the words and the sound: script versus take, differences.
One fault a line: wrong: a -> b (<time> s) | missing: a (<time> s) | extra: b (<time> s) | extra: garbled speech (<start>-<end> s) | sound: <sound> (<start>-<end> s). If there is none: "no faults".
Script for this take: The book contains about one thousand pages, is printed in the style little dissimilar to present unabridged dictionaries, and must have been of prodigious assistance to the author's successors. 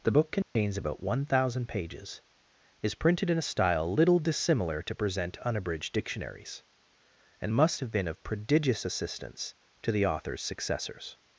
sound: dropout (0.4-0.6 s)
wrong: the -> a (3.4 s)